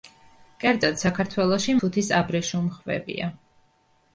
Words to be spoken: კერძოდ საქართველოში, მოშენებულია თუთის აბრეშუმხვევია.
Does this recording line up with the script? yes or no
no